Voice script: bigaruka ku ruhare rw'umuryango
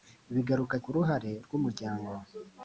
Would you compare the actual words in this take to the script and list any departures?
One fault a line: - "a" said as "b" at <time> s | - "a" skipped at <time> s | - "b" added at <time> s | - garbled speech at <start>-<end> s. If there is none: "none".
none